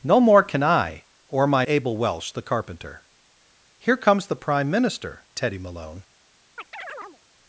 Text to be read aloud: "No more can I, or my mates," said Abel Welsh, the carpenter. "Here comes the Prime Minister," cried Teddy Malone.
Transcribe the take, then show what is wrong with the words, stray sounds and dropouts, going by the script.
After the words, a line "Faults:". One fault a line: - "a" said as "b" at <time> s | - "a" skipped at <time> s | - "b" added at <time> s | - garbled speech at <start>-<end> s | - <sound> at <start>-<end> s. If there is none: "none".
"No more can I, or my Abel Welsh, the carpenter. "Here comes the Prime Minister," Teddy Malone.
Faults:
- "mates said" skipped at 1.7 s
- "cried" skipped at 5.3 s
- chirp at 6.6-7.2 s